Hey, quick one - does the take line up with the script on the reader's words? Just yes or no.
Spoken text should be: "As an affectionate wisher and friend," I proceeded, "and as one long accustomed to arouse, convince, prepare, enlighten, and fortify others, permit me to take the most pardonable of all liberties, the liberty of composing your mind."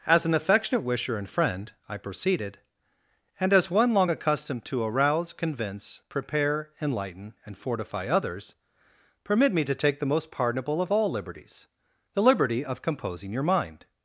yes